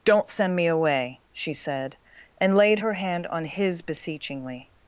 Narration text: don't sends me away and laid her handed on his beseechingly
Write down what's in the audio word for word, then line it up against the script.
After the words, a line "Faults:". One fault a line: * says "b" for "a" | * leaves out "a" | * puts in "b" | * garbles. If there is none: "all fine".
don't send me away she said and laid her hand on his beseechingly
Faults:
* says "send" for "sends"
* puts in "she said"
* says "hand" for "handed"